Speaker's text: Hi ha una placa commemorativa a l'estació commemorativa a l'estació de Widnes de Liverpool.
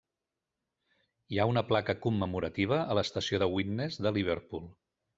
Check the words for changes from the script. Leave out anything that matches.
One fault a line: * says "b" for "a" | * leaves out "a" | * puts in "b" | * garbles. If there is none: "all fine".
* leaves out "commemorativa a l'estació"